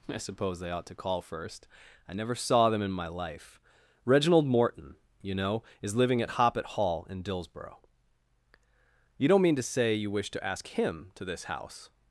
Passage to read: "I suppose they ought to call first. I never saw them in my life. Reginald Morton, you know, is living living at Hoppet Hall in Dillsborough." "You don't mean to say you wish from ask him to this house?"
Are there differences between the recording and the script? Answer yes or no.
yes